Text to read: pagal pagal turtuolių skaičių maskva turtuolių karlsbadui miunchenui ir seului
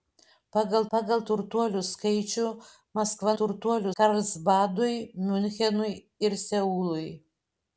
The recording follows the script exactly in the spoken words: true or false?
true